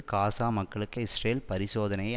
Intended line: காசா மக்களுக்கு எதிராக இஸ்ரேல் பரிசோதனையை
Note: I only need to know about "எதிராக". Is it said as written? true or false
false